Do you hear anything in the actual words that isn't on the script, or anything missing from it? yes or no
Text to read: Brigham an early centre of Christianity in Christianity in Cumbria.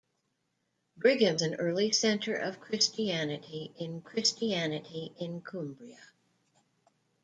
no